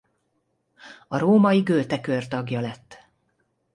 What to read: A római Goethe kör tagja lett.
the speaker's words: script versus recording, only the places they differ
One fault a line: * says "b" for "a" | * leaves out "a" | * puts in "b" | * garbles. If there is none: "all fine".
all fine